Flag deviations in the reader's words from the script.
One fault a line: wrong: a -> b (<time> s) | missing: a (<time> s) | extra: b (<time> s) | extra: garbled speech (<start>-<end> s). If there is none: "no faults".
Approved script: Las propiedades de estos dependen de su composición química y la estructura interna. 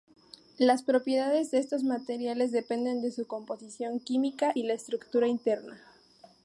extra: materiales (1.8 s)